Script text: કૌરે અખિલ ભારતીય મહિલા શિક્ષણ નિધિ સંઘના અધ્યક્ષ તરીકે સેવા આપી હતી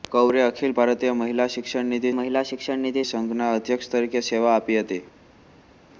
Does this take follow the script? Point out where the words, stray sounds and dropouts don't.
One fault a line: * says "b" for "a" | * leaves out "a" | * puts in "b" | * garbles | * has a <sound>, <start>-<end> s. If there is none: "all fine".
* puts in "મહિલા શિક્ષણ નિધિ"